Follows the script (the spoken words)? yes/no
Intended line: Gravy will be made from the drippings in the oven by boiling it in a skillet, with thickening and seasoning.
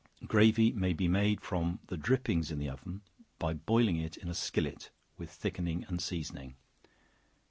no